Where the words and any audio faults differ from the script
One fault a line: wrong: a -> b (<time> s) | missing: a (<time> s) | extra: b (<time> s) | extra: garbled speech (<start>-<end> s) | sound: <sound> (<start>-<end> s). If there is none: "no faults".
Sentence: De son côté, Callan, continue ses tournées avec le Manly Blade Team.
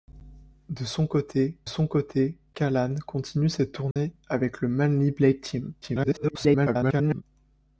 extra: son côté (1.6 s)
sound: dropout (3.9-4.0 s)
extra: garbled speech (5.8-7.2 s)